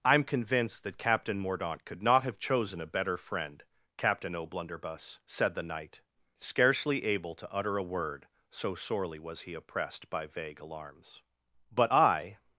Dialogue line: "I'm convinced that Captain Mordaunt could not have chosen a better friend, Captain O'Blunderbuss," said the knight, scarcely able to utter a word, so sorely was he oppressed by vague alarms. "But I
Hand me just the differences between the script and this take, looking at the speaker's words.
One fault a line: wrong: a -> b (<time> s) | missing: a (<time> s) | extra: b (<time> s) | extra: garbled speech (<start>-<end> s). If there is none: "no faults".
no faults